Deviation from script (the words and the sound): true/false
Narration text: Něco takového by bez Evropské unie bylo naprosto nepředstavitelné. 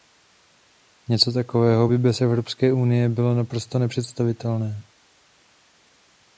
false